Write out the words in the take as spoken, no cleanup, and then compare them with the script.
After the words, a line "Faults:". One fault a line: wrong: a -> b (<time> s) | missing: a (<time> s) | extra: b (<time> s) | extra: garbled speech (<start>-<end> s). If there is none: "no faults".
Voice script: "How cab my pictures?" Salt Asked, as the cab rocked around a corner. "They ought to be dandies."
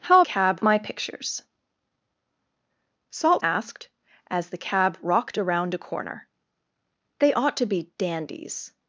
"How cab my pictures?" Salt Asked, as the cab rocked around a corner. "They ought to be dandies."
Faults:
no faults